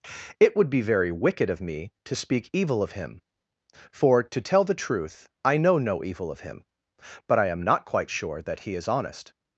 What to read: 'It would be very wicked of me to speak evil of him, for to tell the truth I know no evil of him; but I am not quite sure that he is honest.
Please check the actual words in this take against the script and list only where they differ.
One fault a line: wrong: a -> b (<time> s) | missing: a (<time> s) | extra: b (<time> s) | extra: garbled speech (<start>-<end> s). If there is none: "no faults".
no faults